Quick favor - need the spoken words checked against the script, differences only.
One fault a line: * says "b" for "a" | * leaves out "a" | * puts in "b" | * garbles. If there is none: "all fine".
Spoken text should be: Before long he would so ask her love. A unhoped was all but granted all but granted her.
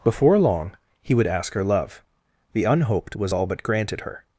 * leaves out "so"
* says "The" for "A"
* leaves out "all but granted"